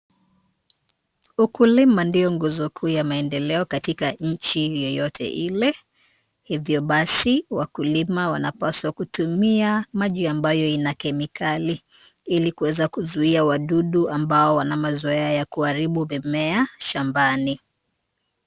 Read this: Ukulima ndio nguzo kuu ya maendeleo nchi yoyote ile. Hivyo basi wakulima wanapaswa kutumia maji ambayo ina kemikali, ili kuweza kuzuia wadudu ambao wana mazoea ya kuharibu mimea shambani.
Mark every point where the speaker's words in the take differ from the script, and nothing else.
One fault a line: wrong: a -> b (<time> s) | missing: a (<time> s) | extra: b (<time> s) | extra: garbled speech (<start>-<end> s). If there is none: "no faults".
extra: katika (3.6 s)